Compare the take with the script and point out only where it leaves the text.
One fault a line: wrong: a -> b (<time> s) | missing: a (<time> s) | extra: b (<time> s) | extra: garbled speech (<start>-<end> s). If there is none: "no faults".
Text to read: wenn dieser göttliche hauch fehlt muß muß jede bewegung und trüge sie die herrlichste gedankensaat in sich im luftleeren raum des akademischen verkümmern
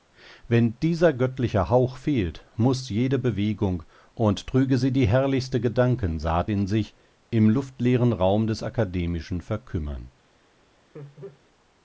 missing: muß (2.9 s)